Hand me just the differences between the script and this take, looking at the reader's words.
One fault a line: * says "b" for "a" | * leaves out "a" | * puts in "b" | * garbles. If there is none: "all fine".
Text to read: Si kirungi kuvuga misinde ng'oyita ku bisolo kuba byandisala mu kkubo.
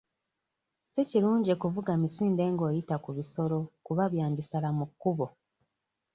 all fine